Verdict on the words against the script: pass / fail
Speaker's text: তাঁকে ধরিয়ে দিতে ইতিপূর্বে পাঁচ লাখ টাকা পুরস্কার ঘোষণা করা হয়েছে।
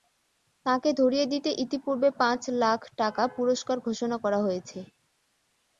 pass